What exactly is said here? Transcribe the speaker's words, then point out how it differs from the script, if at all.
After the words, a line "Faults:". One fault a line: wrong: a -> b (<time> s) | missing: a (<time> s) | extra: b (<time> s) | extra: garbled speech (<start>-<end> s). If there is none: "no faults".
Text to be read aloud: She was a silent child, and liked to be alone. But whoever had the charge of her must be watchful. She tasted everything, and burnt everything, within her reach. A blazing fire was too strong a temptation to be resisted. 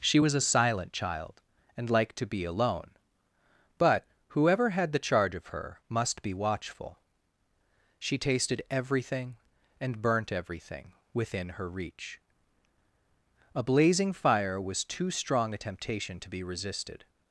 She was a silent child, and liked to be alone. But whoever had the charge of her must be watchful. She tasted everything, and burnt everything, within her reach. A blazing fire was too strong a temptation to be resisted.
Faults:
no faults